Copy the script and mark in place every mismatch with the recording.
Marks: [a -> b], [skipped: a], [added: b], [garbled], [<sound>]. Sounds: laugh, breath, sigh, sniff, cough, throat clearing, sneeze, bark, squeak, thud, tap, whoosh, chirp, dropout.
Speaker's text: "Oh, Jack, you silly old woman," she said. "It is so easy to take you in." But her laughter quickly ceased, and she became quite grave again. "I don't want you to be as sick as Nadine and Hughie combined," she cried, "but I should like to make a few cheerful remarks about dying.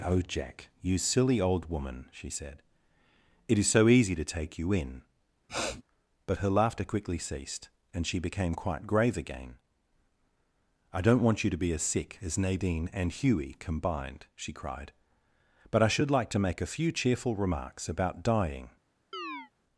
"Oh, Jack, you silly old woman," she said. "It is so easy to take you in." [sniff] But her laughter quickly ceased, and she became quite grave again. "I don't want you to be as sick as Nadine and Hughie combined," she cried, "but I should like to make a few cheerful remarks about dying. [chirp]